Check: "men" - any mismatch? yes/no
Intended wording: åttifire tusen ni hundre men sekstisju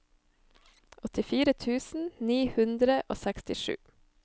yes